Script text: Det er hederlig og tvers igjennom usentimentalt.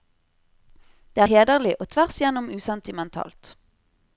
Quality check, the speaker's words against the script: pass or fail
pass